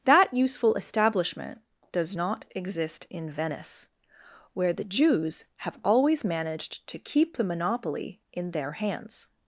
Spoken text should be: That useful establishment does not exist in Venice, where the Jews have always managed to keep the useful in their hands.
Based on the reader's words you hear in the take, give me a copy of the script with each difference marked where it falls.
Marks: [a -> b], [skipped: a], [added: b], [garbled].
That useful establishment does not exist in Venice, where the Jews have always managed to keep the [useful -> monopoly] in their hands.